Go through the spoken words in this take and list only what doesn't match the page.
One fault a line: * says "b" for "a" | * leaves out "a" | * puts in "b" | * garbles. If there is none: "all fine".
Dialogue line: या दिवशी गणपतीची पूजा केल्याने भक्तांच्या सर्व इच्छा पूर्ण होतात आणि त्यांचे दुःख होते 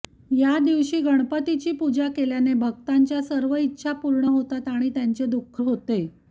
all fine